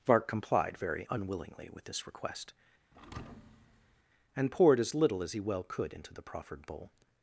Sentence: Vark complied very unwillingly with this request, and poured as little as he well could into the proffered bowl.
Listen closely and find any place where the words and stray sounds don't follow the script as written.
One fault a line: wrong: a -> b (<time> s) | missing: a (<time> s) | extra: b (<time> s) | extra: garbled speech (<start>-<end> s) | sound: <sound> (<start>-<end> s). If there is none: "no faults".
sound: thud (2.9-4.0 s)